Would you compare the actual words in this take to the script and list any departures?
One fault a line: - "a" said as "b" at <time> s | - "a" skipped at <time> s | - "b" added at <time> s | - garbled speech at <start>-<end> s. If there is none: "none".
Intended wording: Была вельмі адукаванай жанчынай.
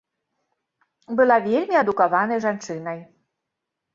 none